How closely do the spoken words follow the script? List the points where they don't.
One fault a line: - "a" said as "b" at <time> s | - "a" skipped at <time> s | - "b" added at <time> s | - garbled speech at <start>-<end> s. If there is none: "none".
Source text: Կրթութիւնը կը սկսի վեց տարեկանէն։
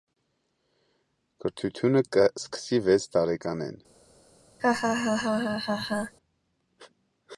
none